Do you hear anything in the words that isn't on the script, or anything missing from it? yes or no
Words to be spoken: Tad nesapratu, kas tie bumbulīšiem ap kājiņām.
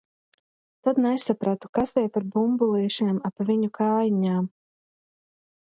yes